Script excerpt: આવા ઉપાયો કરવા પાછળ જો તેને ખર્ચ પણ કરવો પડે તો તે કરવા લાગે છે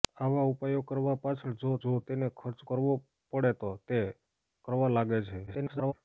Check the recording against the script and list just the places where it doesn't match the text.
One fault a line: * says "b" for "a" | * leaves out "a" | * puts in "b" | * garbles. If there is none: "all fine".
* puts in "જો"
* leaves out "પણ"
* garbles